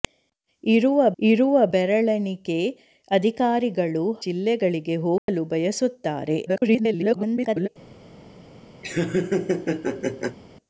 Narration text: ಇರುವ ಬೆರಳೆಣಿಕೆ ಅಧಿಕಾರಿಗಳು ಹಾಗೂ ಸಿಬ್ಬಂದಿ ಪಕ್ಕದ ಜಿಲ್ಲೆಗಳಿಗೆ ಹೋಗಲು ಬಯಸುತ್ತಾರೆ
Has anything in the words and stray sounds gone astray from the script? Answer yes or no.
yes